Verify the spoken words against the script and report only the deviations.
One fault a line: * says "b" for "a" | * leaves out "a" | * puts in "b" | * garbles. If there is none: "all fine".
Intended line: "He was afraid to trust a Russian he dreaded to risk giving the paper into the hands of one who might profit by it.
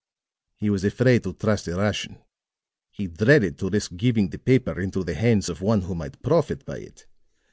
all fine